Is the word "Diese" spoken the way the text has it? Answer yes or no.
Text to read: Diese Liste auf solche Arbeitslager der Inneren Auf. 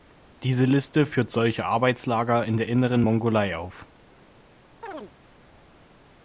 yes